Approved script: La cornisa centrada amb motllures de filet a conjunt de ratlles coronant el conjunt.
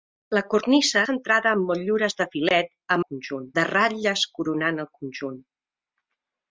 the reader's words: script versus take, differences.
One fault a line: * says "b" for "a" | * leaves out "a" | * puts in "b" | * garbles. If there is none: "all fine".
all fine